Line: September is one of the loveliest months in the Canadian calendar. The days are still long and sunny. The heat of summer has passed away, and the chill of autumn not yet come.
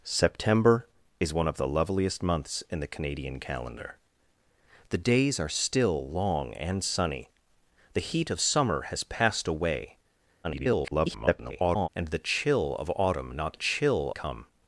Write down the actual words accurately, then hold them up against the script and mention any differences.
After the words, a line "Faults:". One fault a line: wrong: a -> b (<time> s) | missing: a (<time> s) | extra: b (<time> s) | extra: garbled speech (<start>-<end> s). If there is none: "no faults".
September is one of the loveliest months in the Canadian calendar. The days are still long and sunny. The heat of summer has passed away, [garbled] and the chill of autumn not chill come.
Faults:
extra: garbled speech (10.4-11.9 s)
wrong: yet -> chill (13.5 s)